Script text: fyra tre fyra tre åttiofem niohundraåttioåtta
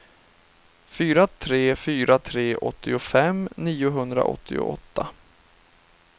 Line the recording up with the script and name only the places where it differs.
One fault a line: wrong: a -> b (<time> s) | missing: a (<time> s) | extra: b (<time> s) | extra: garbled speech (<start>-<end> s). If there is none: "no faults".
no faults